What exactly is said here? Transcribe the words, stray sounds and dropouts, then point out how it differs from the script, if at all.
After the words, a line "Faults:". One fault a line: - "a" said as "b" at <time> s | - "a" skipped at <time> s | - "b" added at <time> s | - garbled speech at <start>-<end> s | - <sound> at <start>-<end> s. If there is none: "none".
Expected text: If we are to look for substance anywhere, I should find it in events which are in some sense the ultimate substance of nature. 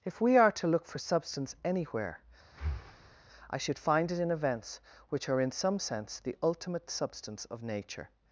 If we are to look for substance anywhere, I should find it in events which are in some sense the ultimate substance of nature.
Faults:
- breath at 2.5-3.2 s